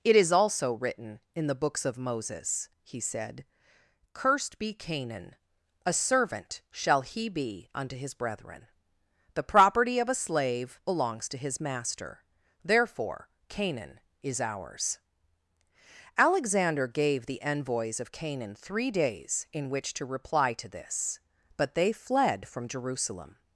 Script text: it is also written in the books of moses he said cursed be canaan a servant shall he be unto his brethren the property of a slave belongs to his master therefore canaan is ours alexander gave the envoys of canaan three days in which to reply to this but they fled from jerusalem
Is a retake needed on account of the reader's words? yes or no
no